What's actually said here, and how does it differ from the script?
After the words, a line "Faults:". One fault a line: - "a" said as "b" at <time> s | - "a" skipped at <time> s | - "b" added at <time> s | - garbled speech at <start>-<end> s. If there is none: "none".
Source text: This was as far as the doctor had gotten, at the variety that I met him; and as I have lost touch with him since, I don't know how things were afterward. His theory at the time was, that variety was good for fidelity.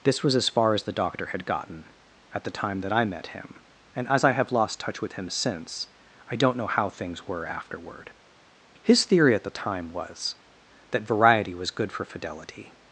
This was as far as the doctor had gotten, at the time that I met him; and as I have lost touch with him since, I don't know how things were afterward. His theory at the time was, that variety was good for fidelity.
Faults:
- "variety" said as "time" at 2.5 s